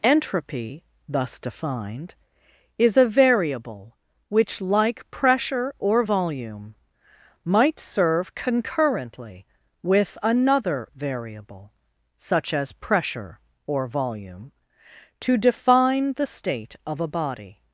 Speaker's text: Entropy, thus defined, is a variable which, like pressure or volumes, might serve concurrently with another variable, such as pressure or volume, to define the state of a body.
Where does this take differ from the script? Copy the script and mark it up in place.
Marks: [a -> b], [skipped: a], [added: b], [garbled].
Entropy, thus defined, is a variable which, like pressure or [volumes, -> volume] might serve concurrently with another variable, such as pressure or volume, to define the state of a body.